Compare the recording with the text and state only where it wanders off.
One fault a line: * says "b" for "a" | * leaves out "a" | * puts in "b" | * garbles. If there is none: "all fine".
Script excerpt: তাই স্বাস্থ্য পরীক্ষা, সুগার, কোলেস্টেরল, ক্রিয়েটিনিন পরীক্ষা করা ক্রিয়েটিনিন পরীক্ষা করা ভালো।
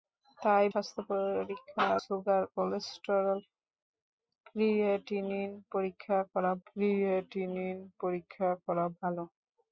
all fine